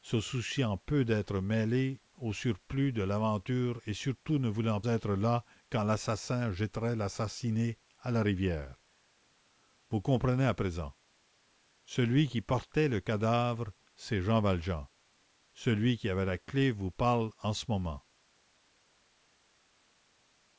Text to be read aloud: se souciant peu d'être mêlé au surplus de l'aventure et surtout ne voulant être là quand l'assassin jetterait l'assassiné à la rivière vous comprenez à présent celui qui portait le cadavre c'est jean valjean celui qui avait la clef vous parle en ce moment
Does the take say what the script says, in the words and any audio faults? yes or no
yes